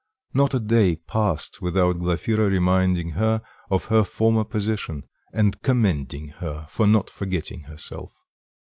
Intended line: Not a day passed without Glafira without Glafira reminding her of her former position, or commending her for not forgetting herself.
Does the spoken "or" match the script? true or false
false